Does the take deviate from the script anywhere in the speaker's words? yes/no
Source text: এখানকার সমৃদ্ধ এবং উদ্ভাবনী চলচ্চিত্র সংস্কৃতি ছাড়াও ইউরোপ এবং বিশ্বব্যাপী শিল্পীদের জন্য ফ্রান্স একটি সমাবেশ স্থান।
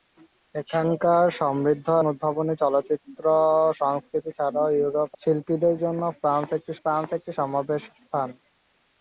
yes